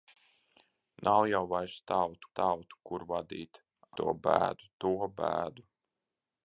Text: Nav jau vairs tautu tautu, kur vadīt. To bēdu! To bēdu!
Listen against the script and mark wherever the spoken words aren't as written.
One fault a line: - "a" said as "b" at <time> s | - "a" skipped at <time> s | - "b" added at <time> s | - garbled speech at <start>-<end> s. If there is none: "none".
none